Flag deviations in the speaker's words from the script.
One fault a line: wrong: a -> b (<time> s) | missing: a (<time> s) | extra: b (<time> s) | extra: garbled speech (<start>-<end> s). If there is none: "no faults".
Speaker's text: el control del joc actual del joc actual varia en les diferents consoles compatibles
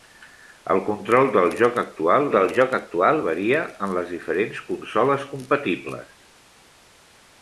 no faults